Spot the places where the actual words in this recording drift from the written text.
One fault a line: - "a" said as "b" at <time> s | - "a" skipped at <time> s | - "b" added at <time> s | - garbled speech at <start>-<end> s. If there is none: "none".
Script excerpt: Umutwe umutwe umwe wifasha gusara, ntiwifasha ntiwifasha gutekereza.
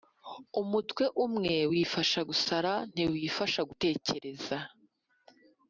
- "umutwe" skipped at 1.0 s
- "ntiwifasha" skipped at 3.6 s